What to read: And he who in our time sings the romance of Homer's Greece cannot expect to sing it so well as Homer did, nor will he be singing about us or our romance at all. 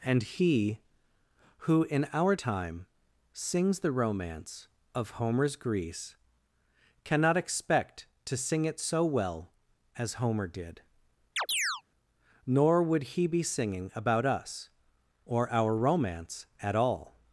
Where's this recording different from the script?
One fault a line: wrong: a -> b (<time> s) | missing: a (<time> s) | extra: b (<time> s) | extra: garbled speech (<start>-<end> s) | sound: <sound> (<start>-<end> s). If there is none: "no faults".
sound: chirp (11.4-11.8 s)
wrong: will -> would (12.8 s)